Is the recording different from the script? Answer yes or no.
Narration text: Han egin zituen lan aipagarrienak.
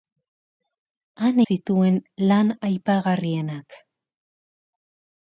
yes